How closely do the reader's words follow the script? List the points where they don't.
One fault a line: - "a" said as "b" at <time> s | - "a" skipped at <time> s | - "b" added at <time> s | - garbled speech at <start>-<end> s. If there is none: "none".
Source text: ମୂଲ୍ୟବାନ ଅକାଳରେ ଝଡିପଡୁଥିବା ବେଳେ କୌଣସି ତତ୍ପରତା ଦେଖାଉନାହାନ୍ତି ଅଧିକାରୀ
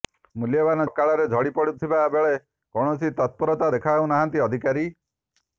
none